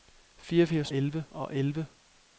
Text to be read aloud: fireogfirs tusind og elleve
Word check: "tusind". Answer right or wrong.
wrong